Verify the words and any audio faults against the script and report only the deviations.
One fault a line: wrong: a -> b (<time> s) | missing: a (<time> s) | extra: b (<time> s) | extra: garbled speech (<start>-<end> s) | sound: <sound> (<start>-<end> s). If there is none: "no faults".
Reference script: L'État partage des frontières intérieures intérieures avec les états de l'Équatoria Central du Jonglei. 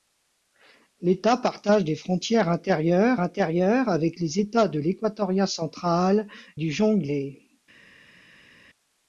no faults